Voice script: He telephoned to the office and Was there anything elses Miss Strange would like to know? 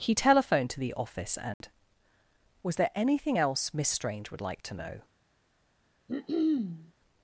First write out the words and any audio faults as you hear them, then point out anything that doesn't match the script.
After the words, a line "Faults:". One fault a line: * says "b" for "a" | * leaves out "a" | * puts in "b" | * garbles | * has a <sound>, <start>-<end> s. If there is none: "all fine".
He telephoned to the office and Was there anything else Miss Strange would like to know?
Faults:
* has a dropout, 1.5-1.6 s
* says "else" for "elses"
* has a throat clearing, 6.1-6.9 s